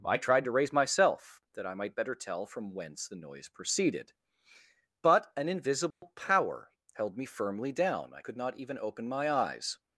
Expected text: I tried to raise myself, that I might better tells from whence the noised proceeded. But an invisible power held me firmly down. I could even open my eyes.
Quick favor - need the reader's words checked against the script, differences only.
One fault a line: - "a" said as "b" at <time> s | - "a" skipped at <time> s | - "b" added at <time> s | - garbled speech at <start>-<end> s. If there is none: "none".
- "tells" said as "tell" at 2.1 s
- "noised" said as "noise" at 3.1 s
- "not" added at 8.4 s